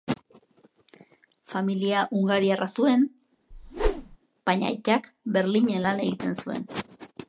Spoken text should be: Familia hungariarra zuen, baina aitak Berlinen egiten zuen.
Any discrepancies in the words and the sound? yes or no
yes